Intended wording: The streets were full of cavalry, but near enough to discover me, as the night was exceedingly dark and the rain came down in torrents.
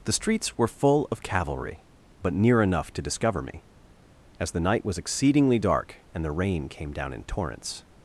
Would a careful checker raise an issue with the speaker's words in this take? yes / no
no